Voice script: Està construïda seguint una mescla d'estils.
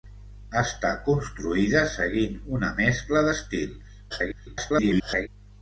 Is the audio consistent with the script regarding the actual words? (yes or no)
no